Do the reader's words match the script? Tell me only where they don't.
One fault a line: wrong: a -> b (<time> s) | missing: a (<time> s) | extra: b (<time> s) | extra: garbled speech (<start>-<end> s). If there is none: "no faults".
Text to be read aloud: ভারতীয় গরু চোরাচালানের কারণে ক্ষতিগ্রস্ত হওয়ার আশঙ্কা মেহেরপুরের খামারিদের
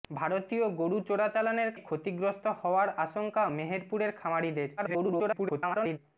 missing: কারণে (1.7 s)
extra: garbled speech (4.8-6.0 s)